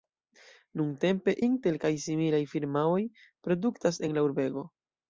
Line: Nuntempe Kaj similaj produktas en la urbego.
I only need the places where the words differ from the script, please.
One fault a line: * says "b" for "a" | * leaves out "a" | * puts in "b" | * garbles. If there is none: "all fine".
* puts in "Intel"
* puts in "firmaoj"